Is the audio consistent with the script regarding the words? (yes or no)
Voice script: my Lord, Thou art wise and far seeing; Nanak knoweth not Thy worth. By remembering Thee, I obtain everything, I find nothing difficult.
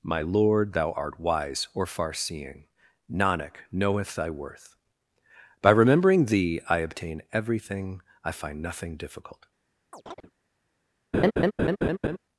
no